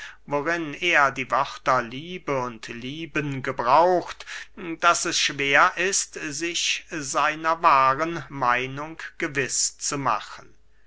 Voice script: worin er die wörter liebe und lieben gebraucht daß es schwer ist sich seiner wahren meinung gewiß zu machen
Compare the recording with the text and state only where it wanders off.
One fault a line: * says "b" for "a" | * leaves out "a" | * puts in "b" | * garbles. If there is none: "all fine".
all fine